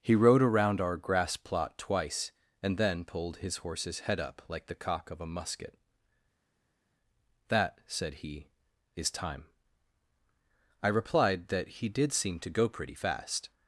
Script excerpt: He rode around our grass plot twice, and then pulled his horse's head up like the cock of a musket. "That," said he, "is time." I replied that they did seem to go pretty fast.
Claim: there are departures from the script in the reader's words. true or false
true